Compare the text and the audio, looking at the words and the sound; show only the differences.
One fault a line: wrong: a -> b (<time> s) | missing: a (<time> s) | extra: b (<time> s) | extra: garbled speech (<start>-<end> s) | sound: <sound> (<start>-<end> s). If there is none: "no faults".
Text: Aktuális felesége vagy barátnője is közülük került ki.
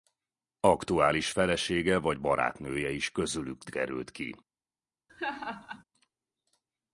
sound: laugh (5.1-5.8 s)